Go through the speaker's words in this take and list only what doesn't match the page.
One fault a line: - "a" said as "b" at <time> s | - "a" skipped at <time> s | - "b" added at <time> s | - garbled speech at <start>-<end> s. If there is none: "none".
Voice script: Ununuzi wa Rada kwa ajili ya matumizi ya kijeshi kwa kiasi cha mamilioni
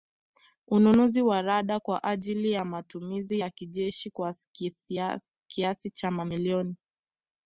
none